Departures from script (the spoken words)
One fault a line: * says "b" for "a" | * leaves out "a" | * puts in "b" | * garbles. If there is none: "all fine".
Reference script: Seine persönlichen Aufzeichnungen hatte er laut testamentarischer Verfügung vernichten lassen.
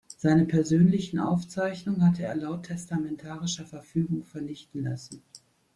all fine